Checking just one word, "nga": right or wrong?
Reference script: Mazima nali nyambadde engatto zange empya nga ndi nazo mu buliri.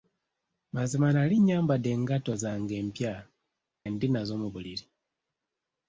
wrong